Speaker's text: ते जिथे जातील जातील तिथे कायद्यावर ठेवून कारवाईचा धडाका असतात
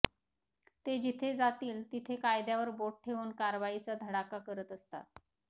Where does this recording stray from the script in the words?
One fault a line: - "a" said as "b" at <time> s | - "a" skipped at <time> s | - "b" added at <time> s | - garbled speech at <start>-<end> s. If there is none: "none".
- "जातील" skipped at 1.8 s
- "बोट" added at 2.8 s
- "करत" added at 4.4 s